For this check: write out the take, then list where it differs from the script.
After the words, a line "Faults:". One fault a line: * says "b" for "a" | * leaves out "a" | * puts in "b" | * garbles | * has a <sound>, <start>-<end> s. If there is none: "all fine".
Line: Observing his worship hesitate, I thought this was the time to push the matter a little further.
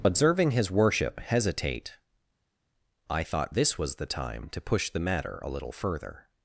Observing his worship hesitate, I thought this was the time to push the matter a little further.
Faults:
all fine